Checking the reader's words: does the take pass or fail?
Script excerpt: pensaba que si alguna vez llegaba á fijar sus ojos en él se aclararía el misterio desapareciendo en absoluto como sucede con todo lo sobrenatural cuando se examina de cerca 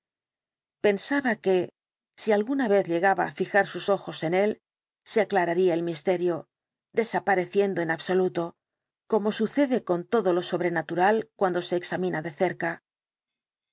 pass